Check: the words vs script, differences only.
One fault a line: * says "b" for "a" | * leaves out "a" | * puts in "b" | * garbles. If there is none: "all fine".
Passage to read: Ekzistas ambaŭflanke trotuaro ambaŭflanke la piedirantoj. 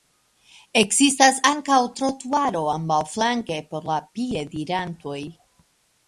* says "ankaŭ" for "ambaŭflanke"
* puts in "por"